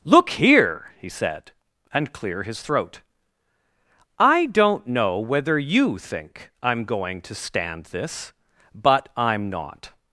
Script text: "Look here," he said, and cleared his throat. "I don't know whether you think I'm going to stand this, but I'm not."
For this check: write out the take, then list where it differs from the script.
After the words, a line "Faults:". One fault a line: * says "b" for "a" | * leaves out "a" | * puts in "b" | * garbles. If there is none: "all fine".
"Look here," he said, and clear his throat. "I don't know whether you think I'm going to stand this, but I'm not."
Faults:
* says "clear" for "cleared"